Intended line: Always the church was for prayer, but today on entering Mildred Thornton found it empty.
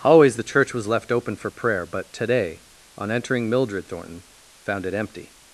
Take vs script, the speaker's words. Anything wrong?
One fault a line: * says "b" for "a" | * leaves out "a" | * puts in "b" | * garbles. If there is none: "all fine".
* puts in "left open"